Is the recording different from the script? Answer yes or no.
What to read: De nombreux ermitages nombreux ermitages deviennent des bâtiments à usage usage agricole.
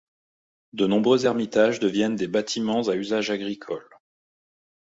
yes